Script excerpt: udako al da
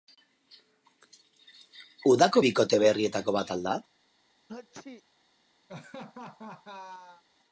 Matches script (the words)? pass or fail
fail